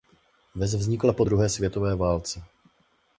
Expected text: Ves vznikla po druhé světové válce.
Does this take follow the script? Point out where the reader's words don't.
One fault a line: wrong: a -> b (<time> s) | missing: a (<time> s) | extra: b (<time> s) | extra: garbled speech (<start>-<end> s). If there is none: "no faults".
no faults